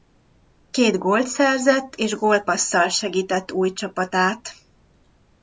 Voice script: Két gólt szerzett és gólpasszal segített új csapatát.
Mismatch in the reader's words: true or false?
false